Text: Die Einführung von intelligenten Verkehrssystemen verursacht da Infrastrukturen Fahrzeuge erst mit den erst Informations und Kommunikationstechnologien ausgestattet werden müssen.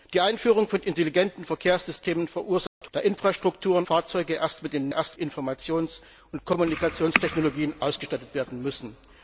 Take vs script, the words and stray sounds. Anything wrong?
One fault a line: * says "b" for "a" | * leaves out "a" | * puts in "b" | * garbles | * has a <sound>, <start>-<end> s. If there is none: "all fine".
* has a dropout, 2.7-2.8 s